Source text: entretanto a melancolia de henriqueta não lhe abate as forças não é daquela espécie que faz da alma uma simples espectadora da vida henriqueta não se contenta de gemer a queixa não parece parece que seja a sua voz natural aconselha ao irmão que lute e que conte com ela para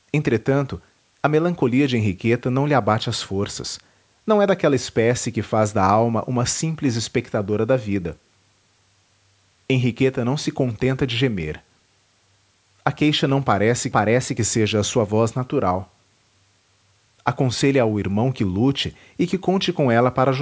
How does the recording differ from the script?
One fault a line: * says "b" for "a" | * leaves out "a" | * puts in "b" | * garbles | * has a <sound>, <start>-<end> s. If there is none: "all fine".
all fine